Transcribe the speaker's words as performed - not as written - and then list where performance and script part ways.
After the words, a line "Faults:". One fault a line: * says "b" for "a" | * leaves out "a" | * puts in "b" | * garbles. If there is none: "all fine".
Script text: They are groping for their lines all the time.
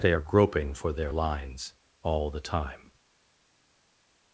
They are groping for their lines all the time.
Faults:
all fine